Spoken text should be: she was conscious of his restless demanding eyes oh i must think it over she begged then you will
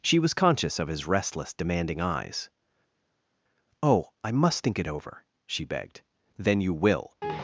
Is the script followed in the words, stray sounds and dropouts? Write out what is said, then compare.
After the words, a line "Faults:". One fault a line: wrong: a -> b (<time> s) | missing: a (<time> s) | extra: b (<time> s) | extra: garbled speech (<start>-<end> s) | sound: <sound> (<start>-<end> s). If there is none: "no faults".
she was conscious of his restless demanding eyes oh i must think it over she begged then you will
Faults:
no faults